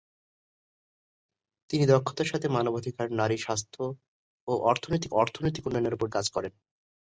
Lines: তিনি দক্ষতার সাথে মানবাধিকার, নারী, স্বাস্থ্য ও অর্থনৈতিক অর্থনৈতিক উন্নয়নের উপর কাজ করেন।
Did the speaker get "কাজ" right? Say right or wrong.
right